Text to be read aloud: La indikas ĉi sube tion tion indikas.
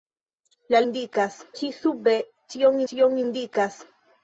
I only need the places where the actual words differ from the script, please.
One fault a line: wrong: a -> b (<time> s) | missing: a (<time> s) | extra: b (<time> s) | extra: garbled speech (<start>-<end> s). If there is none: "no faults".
no faults